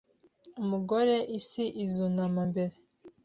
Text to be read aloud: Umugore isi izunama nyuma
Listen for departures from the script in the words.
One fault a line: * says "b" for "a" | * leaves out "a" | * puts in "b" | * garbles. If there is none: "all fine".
* says "mbere" for "nyuma"